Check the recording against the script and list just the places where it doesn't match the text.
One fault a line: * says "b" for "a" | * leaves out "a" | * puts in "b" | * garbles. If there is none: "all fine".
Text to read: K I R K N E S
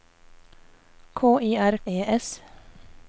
* leaves out "K N"